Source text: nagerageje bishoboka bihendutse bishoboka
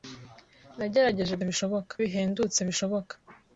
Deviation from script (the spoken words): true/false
false